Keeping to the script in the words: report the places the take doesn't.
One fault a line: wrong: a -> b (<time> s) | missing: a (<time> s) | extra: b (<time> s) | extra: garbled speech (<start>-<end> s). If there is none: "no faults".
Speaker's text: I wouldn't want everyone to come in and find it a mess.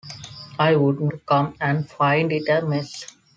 missing: want everyone (1.1 s)
missing: in (1.6 s)